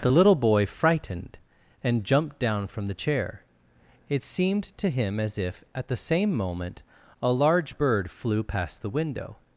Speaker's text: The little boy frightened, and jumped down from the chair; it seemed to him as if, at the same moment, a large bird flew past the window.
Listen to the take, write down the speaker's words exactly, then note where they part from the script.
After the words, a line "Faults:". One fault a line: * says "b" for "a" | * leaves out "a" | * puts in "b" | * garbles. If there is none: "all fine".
The little boy frightened, and jumped down from the chair; it seemed to him as if, at the same moment, a large bird flew past the window.
Faults:
all fine